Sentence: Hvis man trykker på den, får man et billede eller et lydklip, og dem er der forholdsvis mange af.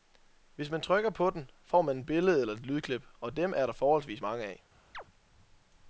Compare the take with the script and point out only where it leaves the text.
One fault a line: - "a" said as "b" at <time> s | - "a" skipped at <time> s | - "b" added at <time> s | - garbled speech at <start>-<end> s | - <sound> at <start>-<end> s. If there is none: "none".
- chirp at 4.9-5.0 s